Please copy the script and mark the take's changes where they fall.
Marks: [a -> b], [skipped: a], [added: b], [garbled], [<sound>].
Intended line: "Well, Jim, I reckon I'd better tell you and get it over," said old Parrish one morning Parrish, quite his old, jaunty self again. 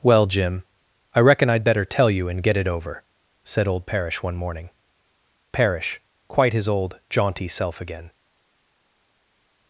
"Well, Jim, I reckon I'd better tell you and get it over," said old Parrish one morning Parrish, quite his old, jaunty self again.